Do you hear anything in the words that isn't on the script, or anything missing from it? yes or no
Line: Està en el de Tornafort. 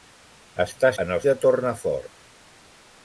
no